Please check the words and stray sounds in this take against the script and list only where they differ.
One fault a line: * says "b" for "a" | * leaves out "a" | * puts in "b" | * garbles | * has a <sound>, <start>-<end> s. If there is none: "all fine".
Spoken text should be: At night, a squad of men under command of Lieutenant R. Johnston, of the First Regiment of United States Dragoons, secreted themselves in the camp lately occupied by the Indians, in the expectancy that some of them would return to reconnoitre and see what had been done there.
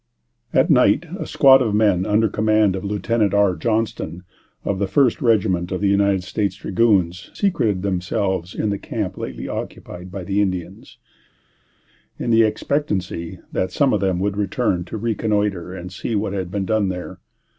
all fine